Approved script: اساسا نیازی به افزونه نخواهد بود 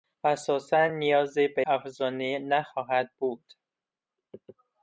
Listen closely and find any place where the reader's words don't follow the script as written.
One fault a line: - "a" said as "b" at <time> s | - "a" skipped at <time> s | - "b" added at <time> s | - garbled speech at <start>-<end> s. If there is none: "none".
none